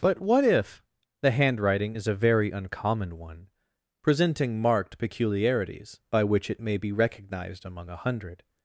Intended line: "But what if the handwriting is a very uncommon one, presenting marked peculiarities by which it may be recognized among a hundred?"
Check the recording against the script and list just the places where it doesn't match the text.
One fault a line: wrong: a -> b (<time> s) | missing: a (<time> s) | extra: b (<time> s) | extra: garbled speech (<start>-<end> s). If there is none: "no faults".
no faults